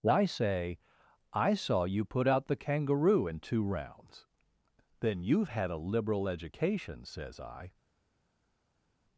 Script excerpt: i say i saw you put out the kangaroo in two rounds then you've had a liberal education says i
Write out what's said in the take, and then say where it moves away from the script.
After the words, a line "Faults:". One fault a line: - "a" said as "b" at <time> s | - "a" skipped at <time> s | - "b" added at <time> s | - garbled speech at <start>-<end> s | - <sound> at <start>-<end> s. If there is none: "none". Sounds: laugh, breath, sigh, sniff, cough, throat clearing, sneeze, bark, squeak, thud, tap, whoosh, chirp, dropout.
i say i saw you put out the kangaroo in two rounds then you've had a liberal education says i
Faults:
none